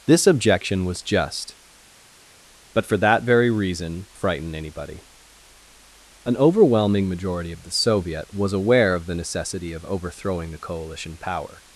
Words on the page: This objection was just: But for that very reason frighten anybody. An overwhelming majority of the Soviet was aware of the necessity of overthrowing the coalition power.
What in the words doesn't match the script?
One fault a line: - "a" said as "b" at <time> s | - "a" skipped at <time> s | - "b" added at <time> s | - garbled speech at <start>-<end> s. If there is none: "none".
none